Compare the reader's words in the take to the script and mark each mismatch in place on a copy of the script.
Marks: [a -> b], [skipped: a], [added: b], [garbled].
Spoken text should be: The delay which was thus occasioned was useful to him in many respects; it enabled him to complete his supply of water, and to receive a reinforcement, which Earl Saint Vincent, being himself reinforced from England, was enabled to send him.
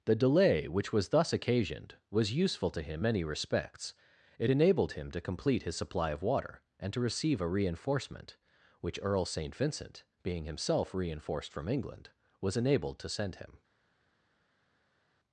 The delay which was thus occasioned was useful to him [skipped: in] many respects; it enabled him to complete his supply of water, and to receive a reinforcement, which Earl Saint Vincent, being himself reinforced from England, was enabled to send him.